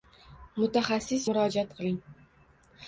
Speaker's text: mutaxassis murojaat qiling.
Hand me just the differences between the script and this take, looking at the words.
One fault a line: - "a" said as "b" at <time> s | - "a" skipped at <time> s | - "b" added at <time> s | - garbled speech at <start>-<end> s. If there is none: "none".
none